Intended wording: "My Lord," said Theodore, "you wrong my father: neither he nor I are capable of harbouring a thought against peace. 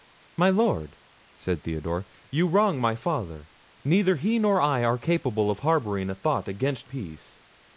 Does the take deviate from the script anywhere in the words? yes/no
no